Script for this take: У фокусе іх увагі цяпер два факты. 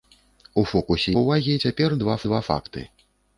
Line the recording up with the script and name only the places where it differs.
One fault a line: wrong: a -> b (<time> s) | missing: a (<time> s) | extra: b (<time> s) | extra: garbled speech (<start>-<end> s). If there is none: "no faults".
missing: іх (1.1 s)
extra: два (2.3 s)